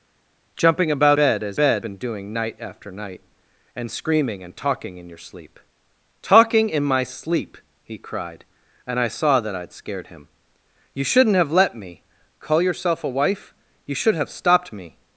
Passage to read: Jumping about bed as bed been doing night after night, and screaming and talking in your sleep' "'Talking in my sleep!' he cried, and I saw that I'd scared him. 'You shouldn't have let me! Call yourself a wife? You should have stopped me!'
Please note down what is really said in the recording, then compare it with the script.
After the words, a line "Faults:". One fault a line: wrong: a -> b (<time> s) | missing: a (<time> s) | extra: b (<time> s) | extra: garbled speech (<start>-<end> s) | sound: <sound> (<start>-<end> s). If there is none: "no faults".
Jumping about bed as bed been doing night after night, and screaming and talking in your sleep' "'Talking in my sleep!' he cried, and I saw that I'd scared him. 'You shouldn't have let me! Call yourself a wife? You should have stopped me!'
Faults:
no faults